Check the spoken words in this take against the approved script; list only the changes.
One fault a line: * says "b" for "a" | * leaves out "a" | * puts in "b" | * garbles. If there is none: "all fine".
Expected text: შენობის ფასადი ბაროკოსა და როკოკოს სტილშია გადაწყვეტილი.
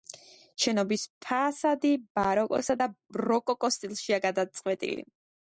all fine